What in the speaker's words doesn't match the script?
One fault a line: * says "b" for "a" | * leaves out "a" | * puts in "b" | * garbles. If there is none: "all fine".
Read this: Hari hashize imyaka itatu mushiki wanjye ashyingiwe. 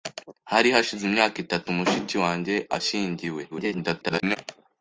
* garbles